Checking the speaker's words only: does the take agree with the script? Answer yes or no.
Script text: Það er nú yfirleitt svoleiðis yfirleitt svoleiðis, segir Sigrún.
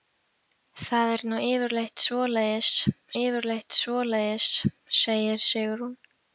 yes